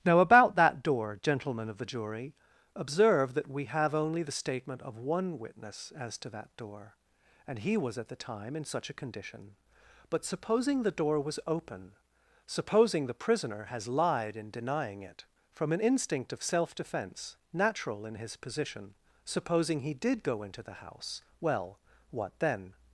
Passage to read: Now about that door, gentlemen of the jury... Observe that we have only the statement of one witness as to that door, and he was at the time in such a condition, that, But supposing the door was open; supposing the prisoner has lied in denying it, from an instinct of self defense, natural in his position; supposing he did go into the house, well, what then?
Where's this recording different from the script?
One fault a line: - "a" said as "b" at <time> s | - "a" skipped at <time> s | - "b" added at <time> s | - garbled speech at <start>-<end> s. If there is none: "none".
- "that" skipped at 9.6 s